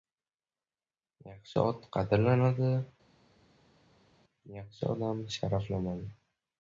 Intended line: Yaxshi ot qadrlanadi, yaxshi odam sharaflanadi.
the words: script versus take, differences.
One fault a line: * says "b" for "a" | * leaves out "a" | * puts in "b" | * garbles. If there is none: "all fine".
all fine